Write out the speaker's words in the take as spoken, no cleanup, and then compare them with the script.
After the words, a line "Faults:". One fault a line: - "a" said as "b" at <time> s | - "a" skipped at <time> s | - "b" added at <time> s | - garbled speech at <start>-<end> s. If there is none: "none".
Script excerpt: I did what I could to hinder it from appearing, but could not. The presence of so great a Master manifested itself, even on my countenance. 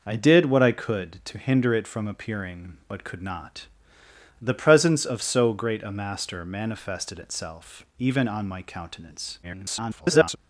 I did what I could to hinder it from appearing, but could not. The presence of so great a Master manifested itself, even on my countenance. [garbled]
Faults:
- garbled speech at 9.4-10.4 s